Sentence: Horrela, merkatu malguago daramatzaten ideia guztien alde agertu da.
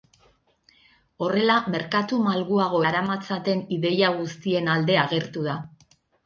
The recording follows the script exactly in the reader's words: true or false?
true